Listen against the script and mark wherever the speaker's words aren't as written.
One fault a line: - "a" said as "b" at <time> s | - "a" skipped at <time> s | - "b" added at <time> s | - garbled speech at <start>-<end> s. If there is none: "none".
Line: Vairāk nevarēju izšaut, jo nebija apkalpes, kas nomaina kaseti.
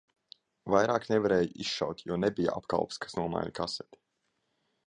none